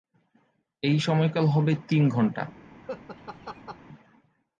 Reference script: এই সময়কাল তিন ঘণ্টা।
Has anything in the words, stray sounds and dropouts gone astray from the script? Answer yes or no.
yes